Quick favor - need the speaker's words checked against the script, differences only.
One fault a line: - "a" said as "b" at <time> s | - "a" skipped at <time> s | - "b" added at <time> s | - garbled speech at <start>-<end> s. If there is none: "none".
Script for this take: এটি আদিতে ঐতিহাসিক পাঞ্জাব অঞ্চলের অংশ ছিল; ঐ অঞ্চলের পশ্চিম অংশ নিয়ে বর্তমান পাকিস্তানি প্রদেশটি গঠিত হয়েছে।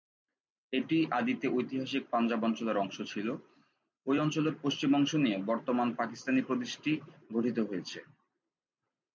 none